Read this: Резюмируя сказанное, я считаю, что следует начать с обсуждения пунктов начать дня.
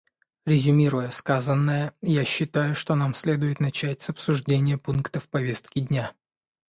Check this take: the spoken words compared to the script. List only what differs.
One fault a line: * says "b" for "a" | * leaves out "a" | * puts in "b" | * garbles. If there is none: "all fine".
* puts in "нам"
* says "повестки" for "начать"